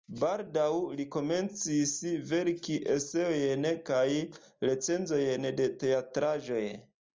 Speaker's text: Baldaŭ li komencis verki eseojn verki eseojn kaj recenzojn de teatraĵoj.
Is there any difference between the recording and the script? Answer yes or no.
yes